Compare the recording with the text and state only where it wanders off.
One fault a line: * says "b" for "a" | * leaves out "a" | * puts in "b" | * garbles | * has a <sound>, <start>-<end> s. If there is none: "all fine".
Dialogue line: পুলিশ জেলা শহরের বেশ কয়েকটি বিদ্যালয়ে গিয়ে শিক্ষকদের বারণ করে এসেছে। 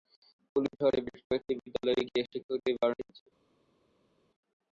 * leaves out "জেলা"
* leaves out "করে"